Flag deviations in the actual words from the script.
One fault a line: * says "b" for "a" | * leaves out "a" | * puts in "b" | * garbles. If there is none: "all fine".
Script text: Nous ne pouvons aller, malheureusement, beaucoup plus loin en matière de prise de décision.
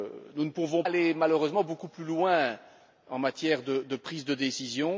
all fine